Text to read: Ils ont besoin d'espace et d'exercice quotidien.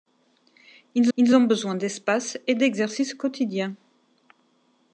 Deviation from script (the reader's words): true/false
true